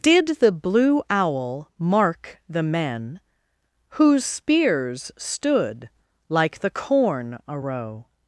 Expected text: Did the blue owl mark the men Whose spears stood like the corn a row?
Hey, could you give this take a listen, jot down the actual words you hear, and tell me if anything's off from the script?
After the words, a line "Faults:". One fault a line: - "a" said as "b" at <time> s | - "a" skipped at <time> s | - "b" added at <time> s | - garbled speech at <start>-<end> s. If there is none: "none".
Did the blue owl mark the men Whose spears stood like the corn a row?
Faults:
none